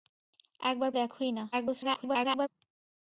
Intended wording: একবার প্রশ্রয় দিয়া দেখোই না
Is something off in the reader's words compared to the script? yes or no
yes